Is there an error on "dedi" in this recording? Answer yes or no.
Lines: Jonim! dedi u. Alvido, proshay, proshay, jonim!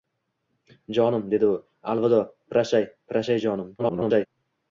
no